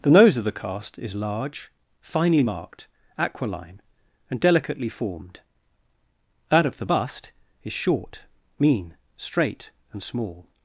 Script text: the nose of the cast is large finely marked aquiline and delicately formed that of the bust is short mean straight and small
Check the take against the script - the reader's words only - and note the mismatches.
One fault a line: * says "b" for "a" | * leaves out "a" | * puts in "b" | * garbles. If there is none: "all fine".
all fine